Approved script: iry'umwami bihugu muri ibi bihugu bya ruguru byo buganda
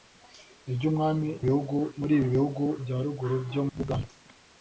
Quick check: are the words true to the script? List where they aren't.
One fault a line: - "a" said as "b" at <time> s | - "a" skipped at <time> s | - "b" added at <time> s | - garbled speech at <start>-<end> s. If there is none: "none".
none